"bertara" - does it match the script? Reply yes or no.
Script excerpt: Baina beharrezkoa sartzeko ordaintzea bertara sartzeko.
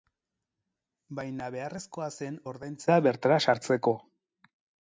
yes